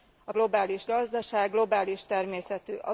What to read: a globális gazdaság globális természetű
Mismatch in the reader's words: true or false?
false